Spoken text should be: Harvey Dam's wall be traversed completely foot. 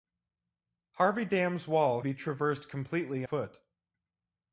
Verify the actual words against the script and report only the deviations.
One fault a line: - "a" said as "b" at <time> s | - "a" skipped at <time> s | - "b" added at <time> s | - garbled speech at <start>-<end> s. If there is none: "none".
none